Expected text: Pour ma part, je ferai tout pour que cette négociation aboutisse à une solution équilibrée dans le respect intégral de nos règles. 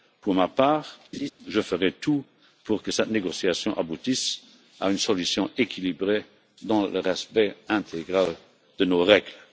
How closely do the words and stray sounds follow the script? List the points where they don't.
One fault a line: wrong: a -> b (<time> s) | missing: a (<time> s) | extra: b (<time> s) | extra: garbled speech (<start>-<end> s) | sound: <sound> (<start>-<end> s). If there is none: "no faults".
sound: laugh (1.1-1.3 s)